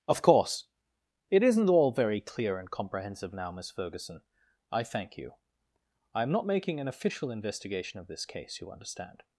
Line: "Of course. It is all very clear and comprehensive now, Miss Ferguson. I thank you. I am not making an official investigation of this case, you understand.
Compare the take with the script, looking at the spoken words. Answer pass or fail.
fail